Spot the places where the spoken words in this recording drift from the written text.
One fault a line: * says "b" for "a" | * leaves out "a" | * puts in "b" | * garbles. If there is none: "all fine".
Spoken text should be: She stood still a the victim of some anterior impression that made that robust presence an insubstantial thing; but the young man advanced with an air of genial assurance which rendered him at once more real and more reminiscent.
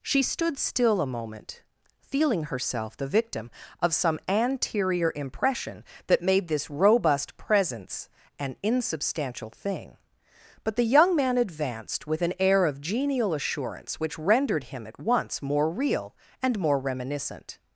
* puts in "moment feeling herself"
* says "this" for "that"